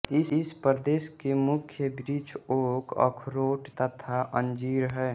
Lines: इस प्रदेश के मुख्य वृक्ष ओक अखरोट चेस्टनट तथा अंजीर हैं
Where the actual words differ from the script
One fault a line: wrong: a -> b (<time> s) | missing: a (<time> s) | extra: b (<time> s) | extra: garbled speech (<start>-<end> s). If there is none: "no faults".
missing: चेस्टनट (3.7 s)